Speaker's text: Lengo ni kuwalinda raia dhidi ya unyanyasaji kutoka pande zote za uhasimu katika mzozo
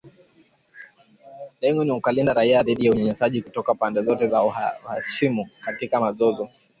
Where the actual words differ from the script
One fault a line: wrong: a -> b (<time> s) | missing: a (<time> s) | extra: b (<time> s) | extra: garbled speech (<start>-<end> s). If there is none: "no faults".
no faults